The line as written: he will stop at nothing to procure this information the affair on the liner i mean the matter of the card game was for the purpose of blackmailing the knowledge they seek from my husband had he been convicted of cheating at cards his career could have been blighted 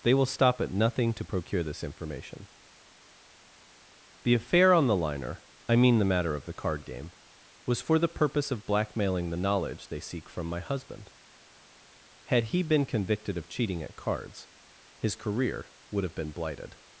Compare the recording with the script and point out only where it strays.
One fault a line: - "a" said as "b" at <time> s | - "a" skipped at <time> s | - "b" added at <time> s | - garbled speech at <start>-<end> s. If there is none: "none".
- "he" said as "they" at 0.0 s
- "could" said as "would" at 15.9 s